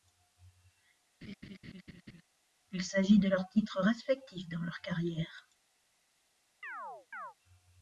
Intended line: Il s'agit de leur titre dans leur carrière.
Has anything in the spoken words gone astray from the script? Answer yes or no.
yes